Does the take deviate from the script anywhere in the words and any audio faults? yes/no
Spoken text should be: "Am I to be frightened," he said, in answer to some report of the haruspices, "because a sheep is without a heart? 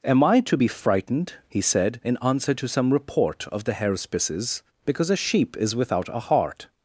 no